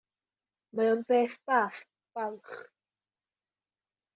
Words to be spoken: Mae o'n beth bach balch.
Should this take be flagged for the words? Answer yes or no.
no